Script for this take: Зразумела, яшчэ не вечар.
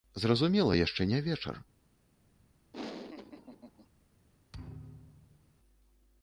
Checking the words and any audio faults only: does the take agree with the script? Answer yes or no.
no